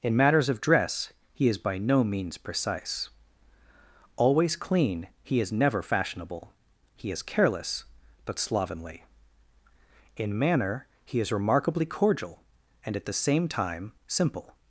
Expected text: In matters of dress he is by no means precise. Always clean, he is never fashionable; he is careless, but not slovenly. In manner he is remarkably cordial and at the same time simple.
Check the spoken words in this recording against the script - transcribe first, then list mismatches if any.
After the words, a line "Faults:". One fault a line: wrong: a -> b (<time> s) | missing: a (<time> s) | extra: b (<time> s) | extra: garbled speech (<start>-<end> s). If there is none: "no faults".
In matters of dress he is by no means precise. Always clean, he is never fashionable; he is careless, but slovenly. In manner he is remarkably cordial and at the same time simple.
Faults:
missing: not (8.4 s)